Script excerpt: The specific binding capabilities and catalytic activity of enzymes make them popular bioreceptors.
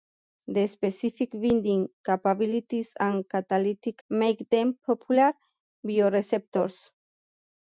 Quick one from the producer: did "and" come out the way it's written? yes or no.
yes